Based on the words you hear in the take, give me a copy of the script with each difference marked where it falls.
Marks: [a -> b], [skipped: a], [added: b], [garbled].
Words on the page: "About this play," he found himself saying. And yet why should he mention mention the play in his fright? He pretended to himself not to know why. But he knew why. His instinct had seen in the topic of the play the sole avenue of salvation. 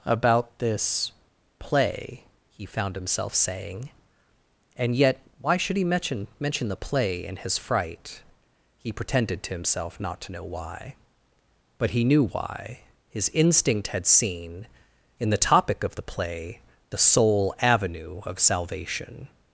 "About this play," he found himself saying. And yet why should he mention mention the play in his fright? He pretended to himself not to know why. But he knew why. His instinct had seen in the topic of the play the sole avenue of salvation.